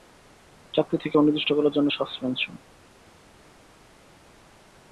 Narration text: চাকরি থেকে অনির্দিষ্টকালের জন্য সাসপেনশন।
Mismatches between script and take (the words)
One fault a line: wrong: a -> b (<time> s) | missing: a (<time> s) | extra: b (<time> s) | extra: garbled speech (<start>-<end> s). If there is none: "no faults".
no faults